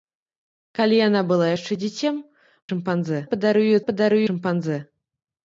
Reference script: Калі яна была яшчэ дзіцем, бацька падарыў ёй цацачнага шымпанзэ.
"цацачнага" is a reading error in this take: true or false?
true